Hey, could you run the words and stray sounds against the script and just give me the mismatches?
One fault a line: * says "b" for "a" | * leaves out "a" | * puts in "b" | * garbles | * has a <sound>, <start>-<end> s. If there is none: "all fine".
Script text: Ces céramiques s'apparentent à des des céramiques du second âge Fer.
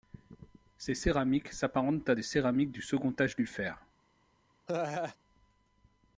* leaves out "des"
* puts in "du"
* has a laugh, 4.7-5.2 s